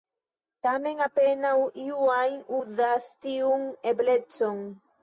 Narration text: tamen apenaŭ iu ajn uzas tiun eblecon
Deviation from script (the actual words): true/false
false